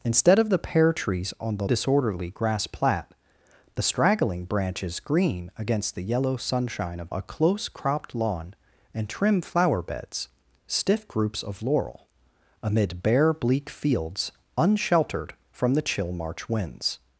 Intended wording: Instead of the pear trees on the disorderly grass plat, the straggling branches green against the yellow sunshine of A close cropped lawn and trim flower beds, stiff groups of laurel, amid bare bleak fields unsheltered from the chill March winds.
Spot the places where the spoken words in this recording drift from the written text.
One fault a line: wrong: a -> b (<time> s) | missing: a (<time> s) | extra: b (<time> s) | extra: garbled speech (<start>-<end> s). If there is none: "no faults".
no faults